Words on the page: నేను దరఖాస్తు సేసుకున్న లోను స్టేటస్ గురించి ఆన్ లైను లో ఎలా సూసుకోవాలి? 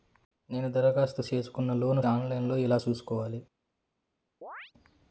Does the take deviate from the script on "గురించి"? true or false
true